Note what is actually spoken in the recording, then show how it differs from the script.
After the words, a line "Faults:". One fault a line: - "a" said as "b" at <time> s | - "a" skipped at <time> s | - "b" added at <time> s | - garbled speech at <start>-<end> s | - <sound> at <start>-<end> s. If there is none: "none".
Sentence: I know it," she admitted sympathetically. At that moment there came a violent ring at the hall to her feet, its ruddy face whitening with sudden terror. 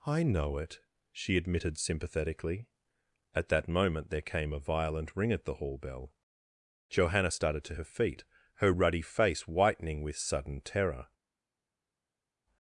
I know it," she admitted sympathetically. At that moment there came a violent ring at the hall bell. Johanna started to her feet, her ruddy face whitening with sudden terror.
Faults:
- "bell Johanna started" added at 5.8 s
- "its" said as "her" at 8.6 s